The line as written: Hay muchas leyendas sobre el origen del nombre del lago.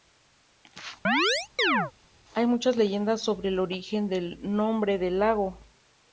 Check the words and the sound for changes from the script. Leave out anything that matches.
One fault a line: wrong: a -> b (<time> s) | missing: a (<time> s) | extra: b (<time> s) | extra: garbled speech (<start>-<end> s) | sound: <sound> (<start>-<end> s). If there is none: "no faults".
sound: chirp (1.0-1.9 s)